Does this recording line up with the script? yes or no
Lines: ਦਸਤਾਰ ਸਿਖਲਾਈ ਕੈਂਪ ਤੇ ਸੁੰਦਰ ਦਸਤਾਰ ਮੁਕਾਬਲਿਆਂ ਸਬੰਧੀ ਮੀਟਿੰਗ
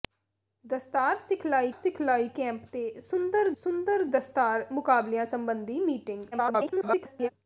no